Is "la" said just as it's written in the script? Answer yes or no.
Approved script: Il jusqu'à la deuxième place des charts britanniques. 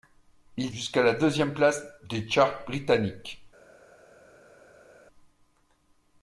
yes